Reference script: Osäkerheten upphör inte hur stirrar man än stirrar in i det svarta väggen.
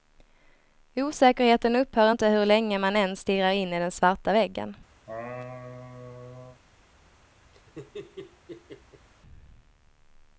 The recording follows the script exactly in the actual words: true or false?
false